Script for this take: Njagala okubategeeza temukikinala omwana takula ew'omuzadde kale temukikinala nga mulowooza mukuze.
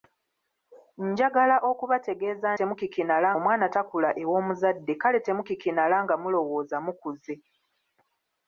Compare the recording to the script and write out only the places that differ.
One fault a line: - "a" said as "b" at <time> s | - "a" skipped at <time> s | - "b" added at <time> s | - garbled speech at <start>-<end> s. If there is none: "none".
none